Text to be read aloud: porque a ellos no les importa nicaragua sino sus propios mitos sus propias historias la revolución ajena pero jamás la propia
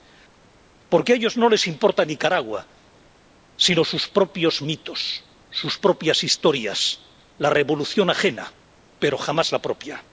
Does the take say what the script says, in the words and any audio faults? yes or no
yes